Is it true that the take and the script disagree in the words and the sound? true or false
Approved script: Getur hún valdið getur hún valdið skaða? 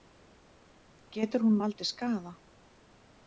true